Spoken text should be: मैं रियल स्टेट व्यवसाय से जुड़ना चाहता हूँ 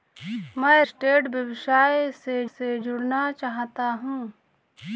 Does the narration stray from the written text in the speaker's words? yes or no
yes